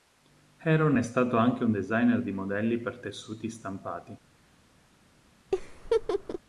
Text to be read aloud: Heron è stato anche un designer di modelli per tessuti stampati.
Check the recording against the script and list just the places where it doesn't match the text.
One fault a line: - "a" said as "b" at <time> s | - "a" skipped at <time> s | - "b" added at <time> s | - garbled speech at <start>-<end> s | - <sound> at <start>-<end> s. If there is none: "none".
- laugh at 5.5-6.4 s